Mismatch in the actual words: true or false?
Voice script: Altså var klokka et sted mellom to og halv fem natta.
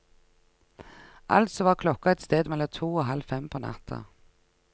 true